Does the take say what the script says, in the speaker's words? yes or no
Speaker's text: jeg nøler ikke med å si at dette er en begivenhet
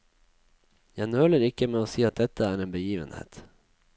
yes